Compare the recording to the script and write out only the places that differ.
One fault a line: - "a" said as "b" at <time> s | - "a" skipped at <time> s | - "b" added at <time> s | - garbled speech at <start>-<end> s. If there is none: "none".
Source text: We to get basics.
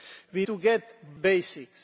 none